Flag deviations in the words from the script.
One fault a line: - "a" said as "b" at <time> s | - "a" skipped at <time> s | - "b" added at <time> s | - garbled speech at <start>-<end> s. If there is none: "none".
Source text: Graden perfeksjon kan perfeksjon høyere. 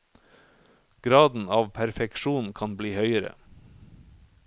- "av" added at 1.5 s
- "perfeksjon" said as "bli" at 2.8 s